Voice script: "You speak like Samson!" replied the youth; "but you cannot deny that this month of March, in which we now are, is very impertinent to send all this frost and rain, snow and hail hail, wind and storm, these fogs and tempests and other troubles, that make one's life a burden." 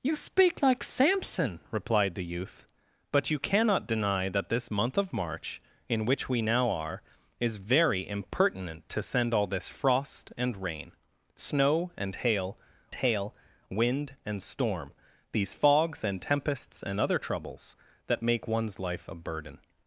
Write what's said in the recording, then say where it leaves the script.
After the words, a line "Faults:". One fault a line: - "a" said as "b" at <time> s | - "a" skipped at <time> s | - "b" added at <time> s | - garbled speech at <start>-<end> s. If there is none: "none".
"You speak like Samson!" replied the youth; "but you cannot deny that this month of March, in which we now are, is very impertinent to send all this frost and rain, snow and hail hail, wind and storm, these fogs and tempests and other troubles, that make one's life a burden."
Faults:
none